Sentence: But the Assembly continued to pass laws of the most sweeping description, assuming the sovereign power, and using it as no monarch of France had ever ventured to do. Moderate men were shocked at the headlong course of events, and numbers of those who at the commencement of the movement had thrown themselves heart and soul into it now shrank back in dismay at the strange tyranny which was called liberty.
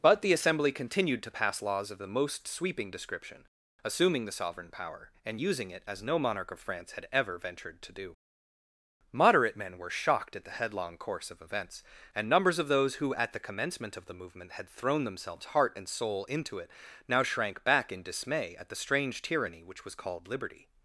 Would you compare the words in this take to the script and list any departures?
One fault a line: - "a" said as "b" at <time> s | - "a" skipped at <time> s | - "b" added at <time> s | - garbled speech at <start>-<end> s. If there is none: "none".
none